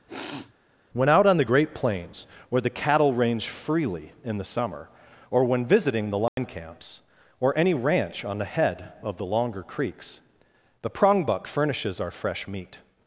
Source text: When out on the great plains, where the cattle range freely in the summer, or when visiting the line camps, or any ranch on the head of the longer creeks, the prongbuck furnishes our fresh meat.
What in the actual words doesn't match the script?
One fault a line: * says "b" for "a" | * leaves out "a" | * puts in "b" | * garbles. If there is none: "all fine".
all fine